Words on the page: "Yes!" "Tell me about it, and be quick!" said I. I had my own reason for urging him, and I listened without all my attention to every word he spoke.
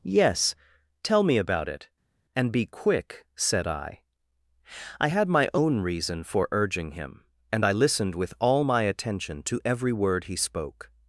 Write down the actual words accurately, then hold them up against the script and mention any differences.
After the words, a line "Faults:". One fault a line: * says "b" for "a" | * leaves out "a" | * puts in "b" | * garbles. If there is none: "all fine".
"Yes!" "Tell me about it, and be quick!" said I. I had my own reason for urging him, and I listened with all my attention to every word he spoke.
Faults:
* says "with" for "without"